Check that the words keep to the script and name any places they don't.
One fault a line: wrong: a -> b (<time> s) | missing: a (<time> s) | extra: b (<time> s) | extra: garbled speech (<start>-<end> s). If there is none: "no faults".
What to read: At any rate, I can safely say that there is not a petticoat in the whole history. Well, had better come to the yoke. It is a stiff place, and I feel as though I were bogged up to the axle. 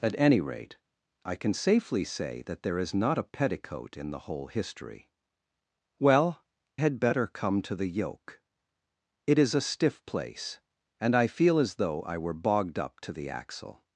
no faults